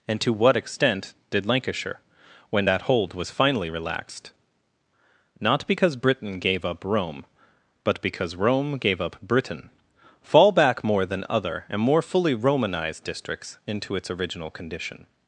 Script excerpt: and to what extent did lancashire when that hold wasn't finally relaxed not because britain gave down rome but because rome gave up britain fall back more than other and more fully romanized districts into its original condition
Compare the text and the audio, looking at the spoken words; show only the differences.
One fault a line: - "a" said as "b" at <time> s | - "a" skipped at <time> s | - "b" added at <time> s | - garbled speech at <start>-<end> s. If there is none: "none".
- "wasn't" said as "was" at 3.1 s
- "down" said as "up" at 6.6 s